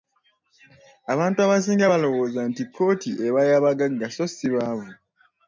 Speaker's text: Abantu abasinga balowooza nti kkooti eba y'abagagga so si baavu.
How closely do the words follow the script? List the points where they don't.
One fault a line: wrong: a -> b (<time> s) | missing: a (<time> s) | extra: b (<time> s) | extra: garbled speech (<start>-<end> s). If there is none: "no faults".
no faults